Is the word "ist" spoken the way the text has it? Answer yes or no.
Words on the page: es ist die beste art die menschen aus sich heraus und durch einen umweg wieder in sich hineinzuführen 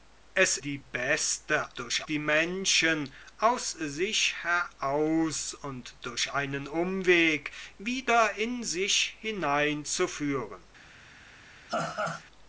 no